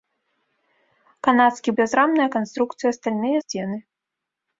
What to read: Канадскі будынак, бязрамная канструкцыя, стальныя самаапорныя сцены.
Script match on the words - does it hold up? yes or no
no